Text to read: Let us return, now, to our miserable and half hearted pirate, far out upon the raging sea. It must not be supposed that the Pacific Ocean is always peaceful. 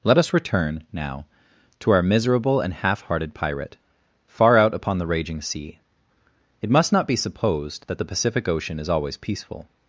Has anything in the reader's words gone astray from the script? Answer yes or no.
no